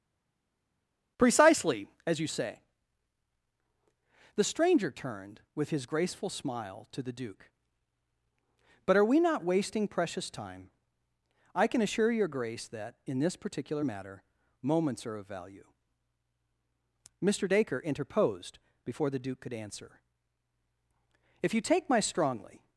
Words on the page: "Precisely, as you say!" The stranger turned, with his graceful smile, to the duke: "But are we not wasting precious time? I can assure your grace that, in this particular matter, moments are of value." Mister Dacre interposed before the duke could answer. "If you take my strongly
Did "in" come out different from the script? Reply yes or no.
no